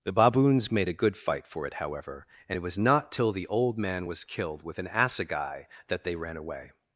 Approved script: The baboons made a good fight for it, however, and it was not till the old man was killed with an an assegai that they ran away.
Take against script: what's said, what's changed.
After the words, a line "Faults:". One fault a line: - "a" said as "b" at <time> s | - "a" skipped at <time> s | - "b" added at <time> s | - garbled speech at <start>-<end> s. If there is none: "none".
The baboons made a good fight for it, however, and it was not till the old man was killed with an assegai that they ran away.
Faults:
- "an" skipped at 4.9 s